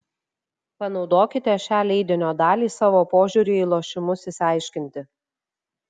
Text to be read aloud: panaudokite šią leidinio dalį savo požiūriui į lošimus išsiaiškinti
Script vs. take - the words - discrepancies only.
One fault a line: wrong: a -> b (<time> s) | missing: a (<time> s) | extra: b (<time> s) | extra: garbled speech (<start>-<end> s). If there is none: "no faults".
no faults